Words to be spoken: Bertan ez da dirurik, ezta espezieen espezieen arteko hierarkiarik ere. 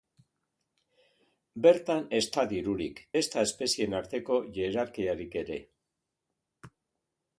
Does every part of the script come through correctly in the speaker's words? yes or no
no